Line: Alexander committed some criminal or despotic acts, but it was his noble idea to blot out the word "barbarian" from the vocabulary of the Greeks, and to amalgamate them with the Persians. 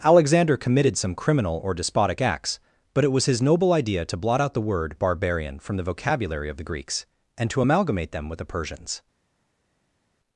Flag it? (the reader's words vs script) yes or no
no